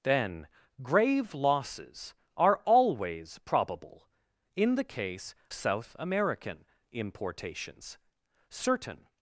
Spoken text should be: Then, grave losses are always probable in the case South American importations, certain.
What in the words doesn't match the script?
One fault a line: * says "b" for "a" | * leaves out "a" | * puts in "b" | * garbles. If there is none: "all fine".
all fine